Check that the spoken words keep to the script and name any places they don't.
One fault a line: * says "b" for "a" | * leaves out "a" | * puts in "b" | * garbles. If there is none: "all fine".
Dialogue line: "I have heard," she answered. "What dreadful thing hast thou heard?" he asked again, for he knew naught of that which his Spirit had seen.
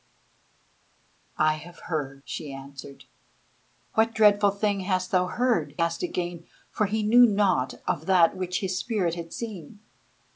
* leaves out "he"